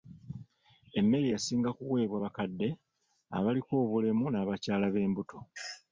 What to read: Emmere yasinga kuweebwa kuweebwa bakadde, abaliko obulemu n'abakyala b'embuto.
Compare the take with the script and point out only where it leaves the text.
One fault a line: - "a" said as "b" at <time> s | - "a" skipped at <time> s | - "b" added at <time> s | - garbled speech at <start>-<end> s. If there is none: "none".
- "kuweebwa" skipped at 2.2 s